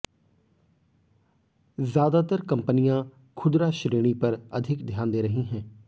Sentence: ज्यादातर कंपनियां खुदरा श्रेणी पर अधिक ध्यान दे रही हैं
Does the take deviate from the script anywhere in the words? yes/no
no